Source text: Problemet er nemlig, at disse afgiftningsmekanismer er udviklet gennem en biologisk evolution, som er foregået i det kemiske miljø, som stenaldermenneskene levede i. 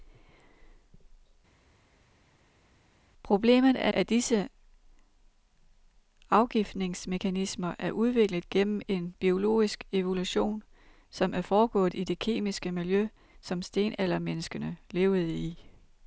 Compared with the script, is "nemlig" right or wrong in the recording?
wrong